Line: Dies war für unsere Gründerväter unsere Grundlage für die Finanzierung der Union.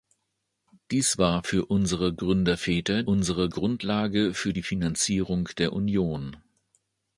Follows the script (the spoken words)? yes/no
yes